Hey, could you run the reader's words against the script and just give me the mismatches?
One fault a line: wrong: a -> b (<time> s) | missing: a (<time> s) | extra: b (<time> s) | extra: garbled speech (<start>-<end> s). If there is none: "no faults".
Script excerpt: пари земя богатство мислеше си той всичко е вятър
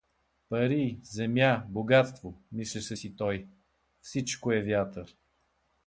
no faults